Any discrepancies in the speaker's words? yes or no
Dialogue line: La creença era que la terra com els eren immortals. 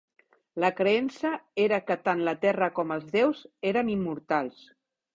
yes